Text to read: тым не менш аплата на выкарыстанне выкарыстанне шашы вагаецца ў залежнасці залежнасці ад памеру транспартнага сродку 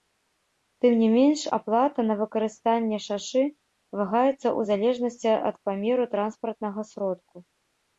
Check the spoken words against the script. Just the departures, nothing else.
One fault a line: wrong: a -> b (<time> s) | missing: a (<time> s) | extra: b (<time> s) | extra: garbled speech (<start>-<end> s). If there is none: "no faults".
missing: выкарыстанне (3.0 s)
missing: залежнасці (5.3 s)